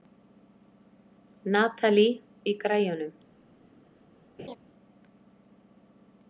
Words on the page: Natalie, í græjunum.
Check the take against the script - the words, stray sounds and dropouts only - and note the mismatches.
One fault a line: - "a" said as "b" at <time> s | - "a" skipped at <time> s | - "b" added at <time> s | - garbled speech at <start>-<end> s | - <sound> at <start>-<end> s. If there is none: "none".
- laugh at 4.4-4.6 s